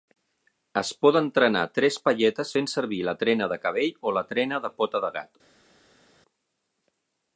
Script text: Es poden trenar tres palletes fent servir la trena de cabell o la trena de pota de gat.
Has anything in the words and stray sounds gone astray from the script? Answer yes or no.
no